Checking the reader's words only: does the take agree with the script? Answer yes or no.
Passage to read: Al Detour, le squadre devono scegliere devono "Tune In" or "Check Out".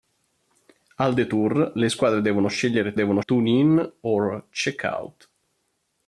yes